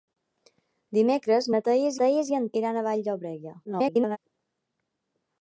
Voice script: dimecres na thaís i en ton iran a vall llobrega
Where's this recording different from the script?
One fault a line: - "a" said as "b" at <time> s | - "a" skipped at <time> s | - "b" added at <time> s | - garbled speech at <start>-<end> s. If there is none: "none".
- "thaís" added at 2.0 s
- "ton" skipped at 2.5 s
- garbled speech at 3.6-4.2 s